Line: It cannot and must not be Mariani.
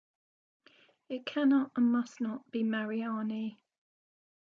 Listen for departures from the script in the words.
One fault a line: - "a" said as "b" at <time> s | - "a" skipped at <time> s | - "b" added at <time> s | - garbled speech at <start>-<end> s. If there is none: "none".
none